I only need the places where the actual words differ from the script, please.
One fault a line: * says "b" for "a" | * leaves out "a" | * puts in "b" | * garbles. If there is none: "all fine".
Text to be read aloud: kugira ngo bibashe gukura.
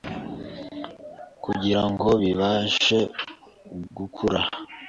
all fine